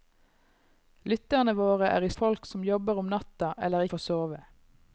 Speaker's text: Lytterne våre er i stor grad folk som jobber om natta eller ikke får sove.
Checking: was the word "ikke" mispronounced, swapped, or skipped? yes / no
yes